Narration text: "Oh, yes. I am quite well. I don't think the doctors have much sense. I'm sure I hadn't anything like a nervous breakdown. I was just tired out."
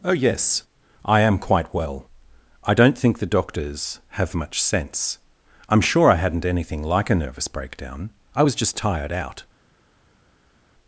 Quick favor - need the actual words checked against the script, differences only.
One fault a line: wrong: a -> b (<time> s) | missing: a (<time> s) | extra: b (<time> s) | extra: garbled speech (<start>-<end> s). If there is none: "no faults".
no faults